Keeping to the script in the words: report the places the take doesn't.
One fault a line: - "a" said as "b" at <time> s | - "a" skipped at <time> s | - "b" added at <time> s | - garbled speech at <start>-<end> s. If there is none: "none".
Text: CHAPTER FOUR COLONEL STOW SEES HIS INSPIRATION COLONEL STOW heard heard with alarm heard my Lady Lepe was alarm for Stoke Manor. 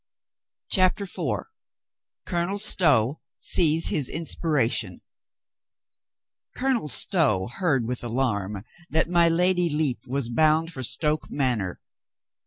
- "heard" skipped at 7.8 s
- "heard" said as "that" at 8.9 s
- "alarm" said as "bound" at 10.3 s